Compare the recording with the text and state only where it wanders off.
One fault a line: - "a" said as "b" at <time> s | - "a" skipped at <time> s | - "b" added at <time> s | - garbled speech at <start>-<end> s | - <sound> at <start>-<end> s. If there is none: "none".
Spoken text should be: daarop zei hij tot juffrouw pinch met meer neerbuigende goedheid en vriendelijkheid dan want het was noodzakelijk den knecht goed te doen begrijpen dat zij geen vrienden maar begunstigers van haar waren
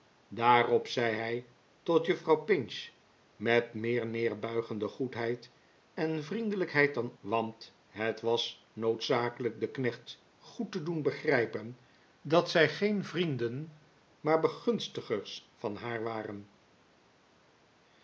none